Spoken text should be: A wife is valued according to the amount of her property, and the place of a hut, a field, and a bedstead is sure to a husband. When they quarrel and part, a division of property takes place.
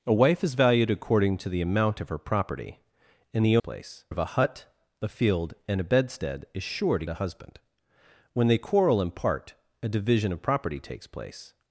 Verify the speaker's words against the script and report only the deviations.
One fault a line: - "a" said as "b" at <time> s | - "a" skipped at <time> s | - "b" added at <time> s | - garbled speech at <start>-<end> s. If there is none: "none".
none